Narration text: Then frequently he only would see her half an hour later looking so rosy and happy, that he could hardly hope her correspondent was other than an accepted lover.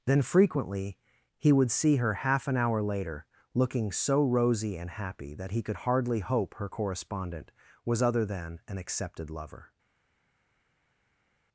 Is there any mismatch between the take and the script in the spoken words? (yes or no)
yes